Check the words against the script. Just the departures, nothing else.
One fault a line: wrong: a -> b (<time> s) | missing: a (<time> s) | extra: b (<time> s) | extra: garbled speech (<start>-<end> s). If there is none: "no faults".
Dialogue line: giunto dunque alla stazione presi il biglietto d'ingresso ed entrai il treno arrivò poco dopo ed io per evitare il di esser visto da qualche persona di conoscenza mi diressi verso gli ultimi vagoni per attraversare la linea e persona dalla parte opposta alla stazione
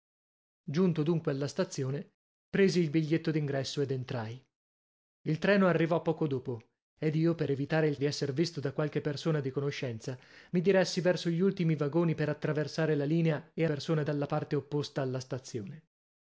no faults